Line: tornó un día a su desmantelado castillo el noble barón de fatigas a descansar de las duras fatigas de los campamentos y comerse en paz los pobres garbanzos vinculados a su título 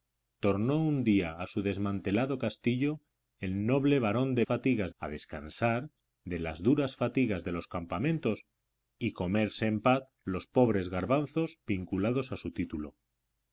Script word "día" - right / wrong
right